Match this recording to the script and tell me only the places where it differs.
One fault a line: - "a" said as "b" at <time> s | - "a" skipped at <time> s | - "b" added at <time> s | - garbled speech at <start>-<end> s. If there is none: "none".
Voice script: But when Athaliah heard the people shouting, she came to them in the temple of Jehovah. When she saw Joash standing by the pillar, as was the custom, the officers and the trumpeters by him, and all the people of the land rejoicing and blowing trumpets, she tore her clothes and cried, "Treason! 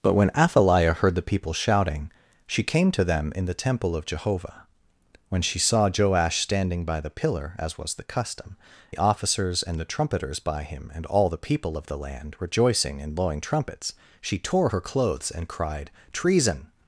none